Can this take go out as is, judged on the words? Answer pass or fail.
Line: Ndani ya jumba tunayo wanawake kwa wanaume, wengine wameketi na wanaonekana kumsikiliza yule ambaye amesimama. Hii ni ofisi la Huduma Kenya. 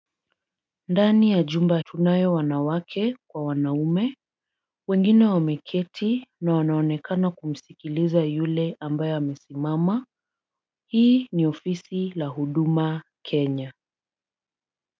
pass